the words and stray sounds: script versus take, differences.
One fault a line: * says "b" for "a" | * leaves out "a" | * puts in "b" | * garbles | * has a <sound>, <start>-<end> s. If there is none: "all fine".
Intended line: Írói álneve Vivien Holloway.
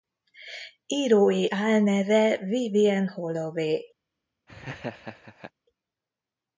* has a laugh, 4.5-5.5 s